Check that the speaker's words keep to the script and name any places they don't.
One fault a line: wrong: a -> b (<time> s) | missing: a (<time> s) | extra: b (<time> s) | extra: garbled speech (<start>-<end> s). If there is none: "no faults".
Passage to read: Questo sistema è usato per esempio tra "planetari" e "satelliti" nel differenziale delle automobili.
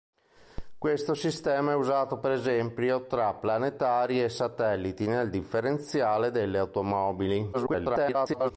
extra: garbled speech (7.5-8.5 s)